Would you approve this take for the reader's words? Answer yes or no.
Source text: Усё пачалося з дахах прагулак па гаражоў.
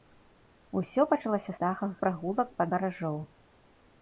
yes